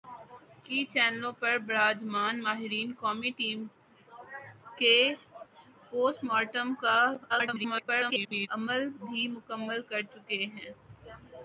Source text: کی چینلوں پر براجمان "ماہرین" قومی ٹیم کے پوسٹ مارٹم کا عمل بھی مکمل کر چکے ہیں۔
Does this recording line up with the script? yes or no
no